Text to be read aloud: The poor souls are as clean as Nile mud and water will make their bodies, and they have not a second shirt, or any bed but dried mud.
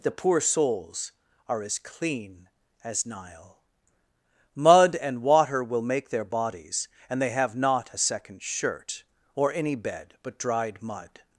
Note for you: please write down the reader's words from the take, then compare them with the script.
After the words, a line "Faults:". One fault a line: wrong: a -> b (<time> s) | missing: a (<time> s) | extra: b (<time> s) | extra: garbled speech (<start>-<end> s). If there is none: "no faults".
The poor souls are as clean as Nile mud and water will make their bodies, and they have not a second shirt, or any bed but dried mud.
Faults:
no faults